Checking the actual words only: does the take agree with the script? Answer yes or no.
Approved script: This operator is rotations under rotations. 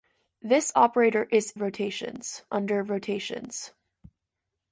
yes